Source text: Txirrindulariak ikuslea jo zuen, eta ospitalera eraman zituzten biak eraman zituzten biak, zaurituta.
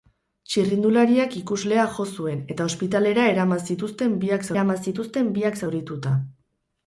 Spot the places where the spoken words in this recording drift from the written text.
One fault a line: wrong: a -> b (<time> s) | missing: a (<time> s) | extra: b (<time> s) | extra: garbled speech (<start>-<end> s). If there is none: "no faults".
no faults